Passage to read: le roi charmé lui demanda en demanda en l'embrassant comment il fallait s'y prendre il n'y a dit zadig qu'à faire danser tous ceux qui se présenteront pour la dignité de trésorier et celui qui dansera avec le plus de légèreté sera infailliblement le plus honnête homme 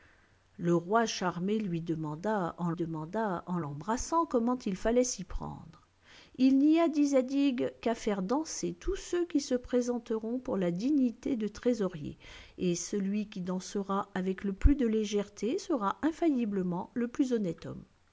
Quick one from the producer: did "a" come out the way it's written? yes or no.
yes